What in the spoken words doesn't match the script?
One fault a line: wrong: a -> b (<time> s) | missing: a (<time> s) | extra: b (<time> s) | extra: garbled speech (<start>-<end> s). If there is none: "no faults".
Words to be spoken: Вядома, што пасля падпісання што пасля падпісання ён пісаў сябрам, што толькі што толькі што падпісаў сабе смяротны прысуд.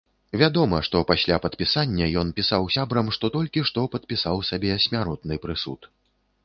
missing: што пасля падпісання (2.1 s)
missing: толькі што (3.9 s)